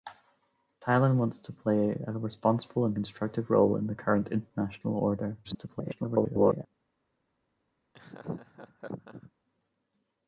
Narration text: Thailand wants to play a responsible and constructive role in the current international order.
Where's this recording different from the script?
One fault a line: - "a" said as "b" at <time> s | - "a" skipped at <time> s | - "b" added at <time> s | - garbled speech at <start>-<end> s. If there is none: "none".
- garbled speech at 5.4-6.7 s